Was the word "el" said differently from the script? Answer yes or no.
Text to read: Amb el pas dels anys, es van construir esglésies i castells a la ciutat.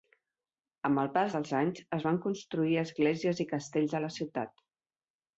no